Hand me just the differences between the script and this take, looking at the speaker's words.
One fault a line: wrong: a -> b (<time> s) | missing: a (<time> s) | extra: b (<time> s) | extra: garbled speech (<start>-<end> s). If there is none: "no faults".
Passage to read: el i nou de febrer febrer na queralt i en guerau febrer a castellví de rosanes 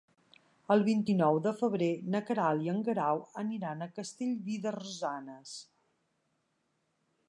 extra: vint (0.9 s)
missing: febrer (1.9 s)
wrong: febrer -> aniran (3.4 s)